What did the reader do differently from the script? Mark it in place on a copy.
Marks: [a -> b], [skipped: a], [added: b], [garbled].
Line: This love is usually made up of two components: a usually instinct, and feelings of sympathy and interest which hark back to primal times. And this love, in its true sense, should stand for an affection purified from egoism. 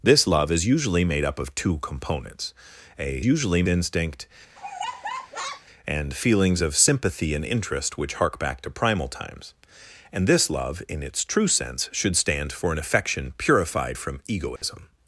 This love is usually made up of two components: a usually instinct, and feelings of sympathy and interest which hark back to primal times. And this love, in its true sense, should stand for an affection purified from egoism.